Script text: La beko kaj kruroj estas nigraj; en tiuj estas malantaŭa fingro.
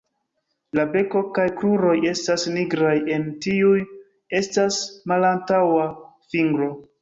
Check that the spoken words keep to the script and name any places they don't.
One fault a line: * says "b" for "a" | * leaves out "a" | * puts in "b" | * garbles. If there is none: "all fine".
all fine